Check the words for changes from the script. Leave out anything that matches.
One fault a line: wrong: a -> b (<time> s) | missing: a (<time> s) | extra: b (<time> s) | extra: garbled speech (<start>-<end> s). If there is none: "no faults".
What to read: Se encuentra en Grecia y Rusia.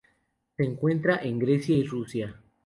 no faults